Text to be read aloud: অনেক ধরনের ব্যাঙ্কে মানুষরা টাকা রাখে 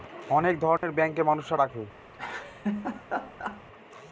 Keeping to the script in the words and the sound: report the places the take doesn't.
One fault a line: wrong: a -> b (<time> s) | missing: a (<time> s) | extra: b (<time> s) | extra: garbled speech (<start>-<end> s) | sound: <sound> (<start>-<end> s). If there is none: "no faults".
sound: dropout (0.8-0.8 s)
missing: টাকা (1.6 s)
sound: laugh (2.1-3.6 s)